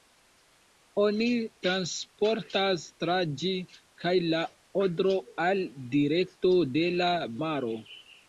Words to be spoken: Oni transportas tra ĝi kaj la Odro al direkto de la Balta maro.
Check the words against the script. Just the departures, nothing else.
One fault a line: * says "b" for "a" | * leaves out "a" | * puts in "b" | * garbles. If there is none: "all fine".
* leaves out "Balta"